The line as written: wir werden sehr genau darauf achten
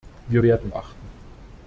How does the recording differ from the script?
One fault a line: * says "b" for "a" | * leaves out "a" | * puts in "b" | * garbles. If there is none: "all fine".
* leaves out "sehr genau darauf"